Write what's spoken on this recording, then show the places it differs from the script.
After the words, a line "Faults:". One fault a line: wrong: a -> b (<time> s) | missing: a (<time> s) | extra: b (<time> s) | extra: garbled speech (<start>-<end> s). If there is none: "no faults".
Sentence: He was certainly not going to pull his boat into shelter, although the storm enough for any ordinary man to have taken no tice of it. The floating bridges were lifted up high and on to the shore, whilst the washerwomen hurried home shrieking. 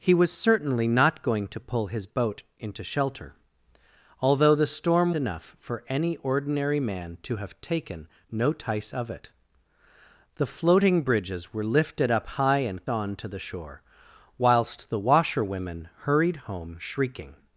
He was certainly not going to pull his boat into shelter, although the storm enough for any ordinary man to have taken no tice of it. The floating bridges were lifted up high and on to the shore, whilst the washerwomen hurried home shrieking.
Faults:
no faults